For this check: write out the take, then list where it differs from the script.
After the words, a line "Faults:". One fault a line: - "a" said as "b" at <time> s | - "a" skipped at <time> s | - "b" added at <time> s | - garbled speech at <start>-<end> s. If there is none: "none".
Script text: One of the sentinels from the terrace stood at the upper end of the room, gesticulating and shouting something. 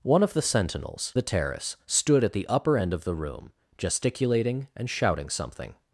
One of the sentinels the terrace stood at the upper end of the room, gesticulating and shouting something.
Faults:
- "from" skipped at 1.1 s